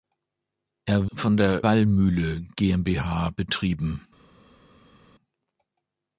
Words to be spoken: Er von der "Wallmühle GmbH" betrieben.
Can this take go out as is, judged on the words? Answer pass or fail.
pass